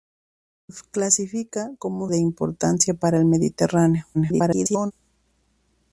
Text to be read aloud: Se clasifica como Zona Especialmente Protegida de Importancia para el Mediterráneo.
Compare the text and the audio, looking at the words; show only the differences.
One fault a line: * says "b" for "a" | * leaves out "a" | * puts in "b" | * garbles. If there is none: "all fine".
* leaves out "Zona Especialmente Protegida"
* garbles